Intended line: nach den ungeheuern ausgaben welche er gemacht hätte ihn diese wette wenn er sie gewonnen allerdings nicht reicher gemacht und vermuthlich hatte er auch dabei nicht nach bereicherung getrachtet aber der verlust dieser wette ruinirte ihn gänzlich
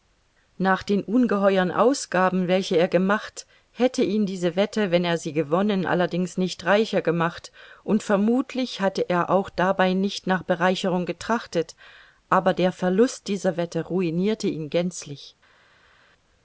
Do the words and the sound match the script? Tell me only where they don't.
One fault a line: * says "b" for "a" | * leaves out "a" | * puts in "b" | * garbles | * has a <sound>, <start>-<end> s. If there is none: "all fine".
all fine